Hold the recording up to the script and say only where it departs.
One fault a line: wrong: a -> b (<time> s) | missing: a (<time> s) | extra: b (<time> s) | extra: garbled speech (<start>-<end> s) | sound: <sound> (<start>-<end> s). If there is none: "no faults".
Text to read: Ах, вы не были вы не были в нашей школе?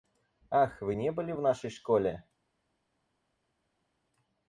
missing: вы не были (1.3 s)